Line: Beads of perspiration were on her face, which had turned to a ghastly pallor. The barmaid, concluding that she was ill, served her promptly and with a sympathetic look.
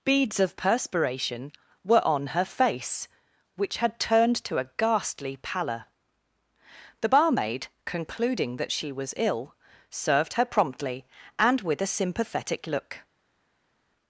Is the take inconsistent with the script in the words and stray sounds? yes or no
no